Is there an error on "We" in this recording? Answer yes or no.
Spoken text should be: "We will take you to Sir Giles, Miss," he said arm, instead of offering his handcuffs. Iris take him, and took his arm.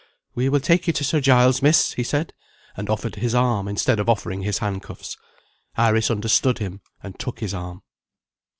no